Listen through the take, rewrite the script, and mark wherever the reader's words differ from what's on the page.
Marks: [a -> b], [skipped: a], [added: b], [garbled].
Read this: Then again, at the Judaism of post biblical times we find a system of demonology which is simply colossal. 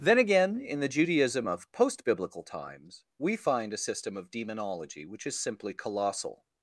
Then again, [at -> in] the Judaism of post biblical times we find a system of demonology which is simply colossal.